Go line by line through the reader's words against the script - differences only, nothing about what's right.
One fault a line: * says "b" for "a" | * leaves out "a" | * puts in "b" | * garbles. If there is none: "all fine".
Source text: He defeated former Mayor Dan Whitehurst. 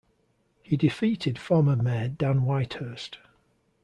all fine